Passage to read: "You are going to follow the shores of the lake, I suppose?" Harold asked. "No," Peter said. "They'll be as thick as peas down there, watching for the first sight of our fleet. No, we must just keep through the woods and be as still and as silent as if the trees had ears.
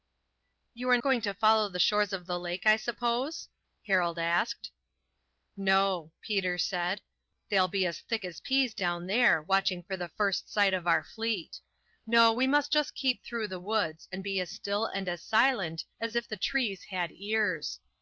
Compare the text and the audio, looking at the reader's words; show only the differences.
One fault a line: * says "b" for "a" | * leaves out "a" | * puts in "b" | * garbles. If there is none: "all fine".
all fine